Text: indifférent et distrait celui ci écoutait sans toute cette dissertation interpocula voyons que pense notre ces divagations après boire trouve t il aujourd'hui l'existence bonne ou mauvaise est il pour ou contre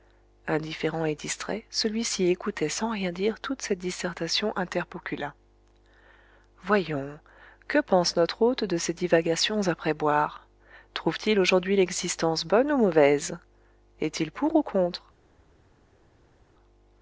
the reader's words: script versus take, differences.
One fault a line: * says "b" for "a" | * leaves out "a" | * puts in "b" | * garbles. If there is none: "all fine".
* puts in "rien dire"
* puts in "hôte de"